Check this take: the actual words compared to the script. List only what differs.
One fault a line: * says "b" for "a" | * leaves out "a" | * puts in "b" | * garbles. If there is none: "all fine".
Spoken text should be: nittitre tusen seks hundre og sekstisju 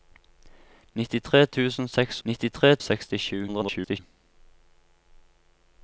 * says "nittitre" for "hundre"
* garbles